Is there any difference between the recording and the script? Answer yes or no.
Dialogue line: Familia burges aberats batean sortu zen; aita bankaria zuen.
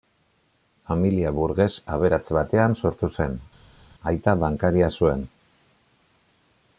no